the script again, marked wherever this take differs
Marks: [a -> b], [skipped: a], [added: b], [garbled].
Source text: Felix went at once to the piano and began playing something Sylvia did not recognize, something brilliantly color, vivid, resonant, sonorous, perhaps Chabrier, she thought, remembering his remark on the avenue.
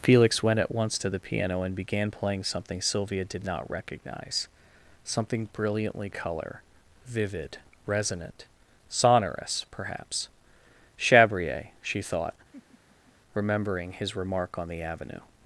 Felix went at once to the piano and began playing something Sylvia did not recognize, something brilliantly color, vivid, resonant, sonorous, perhaps Chabrier, she thought, remembering his remark on the avenue.